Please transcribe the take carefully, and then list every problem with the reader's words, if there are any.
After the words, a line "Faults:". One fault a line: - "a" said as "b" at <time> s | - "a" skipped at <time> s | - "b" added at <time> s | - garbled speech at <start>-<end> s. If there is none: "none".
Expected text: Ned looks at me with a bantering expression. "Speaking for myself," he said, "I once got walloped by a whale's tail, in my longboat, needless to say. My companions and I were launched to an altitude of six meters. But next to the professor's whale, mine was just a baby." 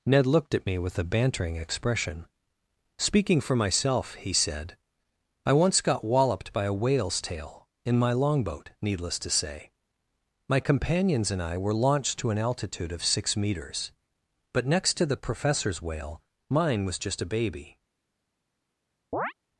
Ned looked at me with a bantering expression. "Speaking for myself," he said, "I once got walloped by a whale's tail, in my longboat, needless to say. My companions and I were launched to an altitude of six meters. But next to the professor's whale, mine was just a baby."
Faults:
- "looks" said as "looked" at 0.2 s